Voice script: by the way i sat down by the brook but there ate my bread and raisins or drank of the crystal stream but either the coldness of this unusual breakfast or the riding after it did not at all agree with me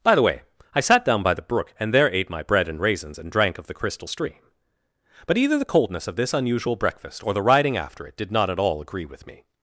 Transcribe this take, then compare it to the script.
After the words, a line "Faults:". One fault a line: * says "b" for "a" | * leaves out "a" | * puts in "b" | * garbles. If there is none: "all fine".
by the way i sat down by the brook and there ate my bread and raisins and drank of the crystal stream but either the coldness of this unusual breakfast or the riding after it did not at all agree with me
Faults:
* says "and" for "but"
* says "and" for "or"